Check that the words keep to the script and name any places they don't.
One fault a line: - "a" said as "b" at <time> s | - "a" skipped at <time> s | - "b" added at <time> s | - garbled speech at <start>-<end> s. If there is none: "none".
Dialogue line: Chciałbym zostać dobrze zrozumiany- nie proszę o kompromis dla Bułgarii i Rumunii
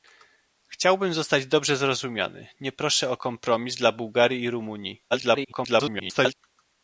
- garbled speech at 5.1-6.3 s